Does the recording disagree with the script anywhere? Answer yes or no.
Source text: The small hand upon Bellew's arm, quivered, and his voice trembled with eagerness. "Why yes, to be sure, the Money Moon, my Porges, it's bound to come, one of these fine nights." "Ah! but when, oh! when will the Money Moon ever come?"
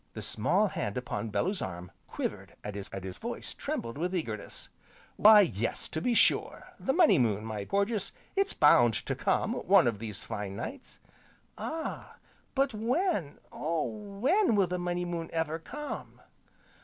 yes